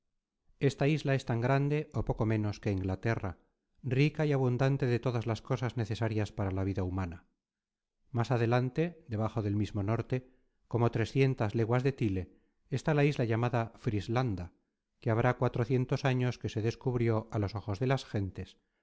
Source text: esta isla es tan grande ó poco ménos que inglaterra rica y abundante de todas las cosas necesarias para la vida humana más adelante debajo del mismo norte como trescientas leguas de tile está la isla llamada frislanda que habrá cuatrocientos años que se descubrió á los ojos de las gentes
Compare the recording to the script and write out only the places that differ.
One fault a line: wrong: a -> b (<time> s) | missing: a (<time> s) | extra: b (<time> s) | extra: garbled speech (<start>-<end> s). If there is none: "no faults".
no faults